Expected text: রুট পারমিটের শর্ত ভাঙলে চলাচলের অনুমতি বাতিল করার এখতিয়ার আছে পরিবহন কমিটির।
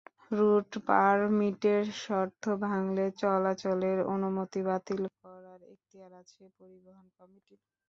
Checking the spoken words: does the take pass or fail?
pass